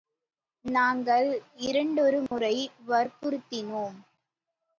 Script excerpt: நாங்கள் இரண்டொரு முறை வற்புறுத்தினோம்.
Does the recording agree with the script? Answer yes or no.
yes